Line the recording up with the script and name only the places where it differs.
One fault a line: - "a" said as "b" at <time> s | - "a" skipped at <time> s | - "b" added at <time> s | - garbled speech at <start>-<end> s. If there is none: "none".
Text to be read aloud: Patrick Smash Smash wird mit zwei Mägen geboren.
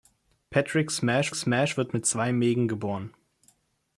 none